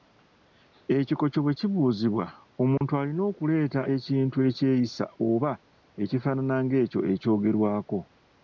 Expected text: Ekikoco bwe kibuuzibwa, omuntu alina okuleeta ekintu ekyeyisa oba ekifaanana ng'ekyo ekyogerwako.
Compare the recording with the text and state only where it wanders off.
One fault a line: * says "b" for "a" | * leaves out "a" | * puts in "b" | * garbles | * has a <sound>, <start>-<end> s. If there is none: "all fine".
* has a dropout, 2.8-2.8 s